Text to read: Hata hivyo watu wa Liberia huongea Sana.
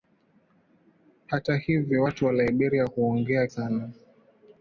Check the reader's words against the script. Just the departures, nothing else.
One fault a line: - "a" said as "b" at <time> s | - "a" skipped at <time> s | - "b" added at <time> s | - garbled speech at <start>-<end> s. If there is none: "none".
none